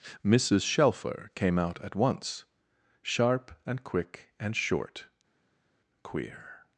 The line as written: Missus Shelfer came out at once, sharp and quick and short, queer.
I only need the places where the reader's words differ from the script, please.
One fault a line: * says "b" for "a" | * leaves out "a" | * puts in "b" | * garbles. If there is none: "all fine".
all fine